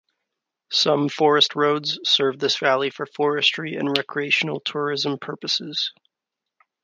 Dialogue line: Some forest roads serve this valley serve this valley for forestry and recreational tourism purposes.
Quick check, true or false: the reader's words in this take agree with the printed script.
false